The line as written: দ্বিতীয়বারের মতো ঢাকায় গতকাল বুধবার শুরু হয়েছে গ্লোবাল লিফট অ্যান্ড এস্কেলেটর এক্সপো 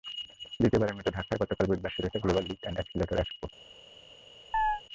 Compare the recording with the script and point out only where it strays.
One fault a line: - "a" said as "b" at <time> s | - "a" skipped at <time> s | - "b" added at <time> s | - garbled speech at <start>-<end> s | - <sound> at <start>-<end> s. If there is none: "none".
- chirp at 4.5-4.8 s